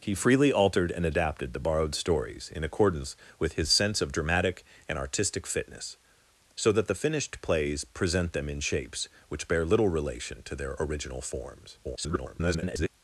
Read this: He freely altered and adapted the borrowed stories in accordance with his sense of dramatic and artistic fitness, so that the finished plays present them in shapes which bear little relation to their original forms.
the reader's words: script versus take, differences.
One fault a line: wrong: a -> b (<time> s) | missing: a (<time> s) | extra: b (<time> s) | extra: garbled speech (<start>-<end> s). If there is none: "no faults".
extra: garbled speech (11.8-12.9 s)